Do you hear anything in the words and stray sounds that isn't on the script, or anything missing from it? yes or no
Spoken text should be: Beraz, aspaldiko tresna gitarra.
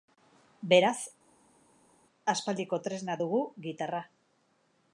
yes